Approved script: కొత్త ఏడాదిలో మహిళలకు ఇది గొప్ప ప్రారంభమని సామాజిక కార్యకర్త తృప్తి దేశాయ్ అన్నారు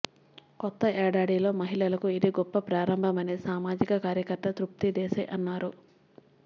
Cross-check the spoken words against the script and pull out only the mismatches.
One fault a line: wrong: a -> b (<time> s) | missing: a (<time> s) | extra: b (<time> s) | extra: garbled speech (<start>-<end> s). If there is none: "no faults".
no faults